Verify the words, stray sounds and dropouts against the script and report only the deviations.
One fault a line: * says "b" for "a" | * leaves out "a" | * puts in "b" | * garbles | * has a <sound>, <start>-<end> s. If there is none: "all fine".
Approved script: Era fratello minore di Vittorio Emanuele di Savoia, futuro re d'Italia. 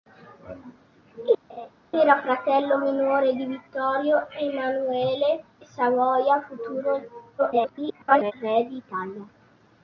* has a laugh, 1.5-1.7 s
* leaves out "di"
* garbles